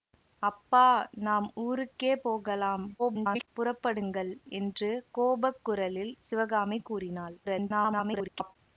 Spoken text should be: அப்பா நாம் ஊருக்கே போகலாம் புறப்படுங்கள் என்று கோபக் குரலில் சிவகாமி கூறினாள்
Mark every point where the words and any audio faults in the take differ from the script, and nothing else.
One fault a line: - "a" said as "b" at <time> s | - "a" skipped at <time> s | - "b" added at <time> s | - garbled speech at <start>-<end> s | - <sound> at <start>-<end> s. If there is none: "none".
- garbled speech at 3.0-3.5 s
- garbled speech at 7.4-8.6 s